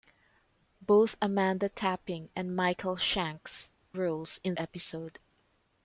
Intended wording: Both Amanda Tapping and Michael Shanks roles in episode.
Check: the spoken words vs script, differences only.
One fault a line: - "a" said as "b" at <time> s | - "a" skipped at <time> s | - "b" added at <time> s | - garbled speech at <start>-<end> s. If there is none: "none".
none